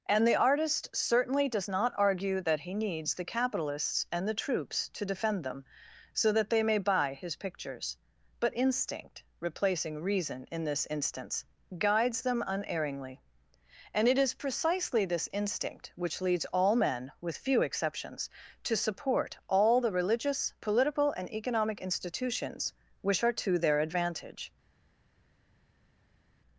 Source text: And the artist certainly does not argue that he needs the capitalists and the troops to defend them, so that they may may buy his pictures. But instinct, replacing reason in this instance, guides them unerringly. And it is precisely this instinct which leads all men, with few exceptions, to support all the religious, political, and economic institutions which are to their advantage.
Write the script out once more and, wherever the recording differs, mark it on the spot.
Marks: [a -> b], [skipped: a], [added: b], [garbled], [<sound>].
And the artist certainly does not argue that he needs the capitalists and the troops to defend them, so that they may [skipped: may] buy his pictures. But instinct, replacing reason in this instance, guides them unerringly. And it is precisely this instinct which leads all men, with few exceptions, to support all the religious, political, and economic institutions which are to their advantage.